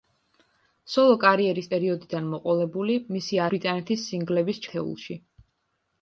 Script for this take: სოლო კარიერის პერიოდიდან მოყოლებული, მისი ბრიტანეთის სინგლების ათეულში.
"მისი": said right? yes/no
yes